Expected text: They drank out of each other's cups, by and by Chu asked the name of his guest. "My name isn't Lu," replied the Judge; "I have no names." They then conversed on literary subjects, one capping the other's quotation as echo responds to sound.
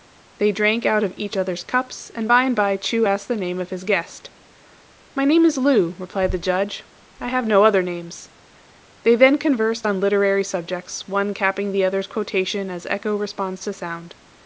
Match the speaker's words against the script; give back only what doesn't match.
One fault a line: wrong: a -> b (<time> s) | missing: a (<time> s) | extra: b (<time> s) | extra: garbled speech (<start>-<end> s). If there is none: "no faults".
extra: and (2.1 s)
wrong: isn't -> is (5.4 s)
extra: other (7.6 s)